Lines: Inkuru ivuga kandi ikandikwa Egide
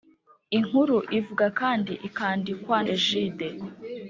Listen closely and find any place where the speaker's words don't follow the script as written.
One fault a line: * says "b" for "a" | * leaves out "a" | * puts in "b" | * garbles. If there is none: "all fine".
all fine